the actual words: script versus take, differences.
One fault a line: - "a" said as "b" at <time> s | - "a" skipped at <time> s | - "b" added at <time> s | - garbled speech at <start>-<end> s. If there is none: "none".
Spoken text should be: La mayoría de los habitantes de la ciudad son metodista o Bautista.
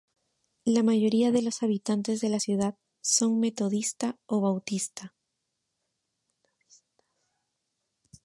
none